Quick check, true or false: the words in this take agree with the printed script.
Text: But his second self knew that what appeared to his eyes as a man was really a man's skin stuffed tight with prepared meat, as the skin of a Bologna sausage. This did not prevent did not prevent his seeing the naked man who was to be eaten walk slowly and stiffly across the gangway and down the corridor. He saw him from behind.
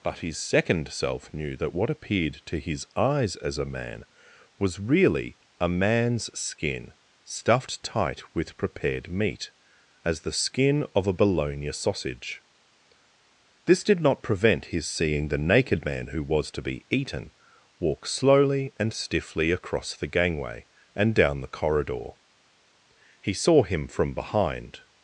false